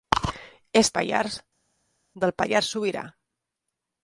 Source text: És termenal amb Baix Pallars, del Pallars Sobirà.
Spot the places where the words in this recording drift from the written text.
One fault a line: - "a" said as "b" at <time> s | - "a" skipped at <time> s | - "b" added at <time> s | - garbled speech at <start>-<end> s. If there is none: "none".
- "termenal amb Baix" skipped at 0.9 s